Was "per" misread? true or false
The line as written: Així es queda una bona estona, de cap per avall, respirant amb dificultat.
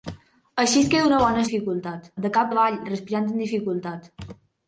true